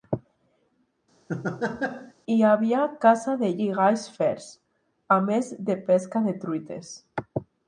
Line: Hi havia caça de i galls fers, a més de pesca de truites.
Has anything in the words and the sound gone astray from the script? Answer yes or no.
yes